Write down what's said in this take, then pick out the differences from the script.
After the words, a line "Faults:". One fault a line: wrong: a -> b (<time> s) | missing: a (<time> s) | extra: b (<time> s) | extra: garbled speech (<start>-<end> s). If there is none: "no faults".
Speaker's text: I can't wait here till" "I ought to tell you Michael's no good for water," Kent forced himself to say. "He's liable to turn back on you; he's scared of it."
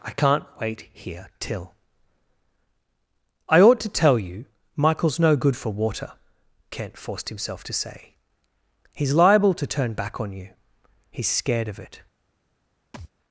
I can't wait here till" "I ought to tell you Michael's no good for water," Kent forced himself to say. "He's liable to turn back on you; he's scared of it."
Faults:
no faults